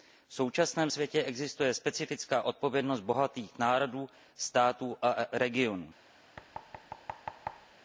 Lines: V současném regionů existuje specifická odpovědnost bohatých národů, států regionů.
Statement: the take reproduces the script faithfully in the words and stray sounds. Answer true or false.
false